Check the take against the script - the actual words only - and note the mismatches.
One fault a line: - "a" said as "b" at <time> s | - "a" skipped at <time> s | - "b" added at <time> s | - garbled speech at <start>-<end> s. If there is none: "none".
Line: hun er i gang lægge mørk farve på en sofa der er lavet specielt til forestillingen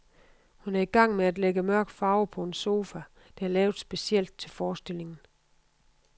- "med at" added at 1.1 s